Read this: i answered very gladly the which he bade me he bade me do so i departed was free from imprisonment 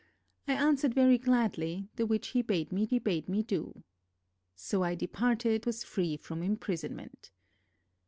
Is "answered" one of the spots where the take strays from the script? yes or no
no